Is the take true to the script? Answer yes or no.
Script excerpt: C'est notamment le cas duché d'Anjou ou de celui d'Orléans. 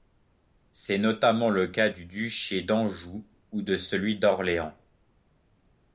no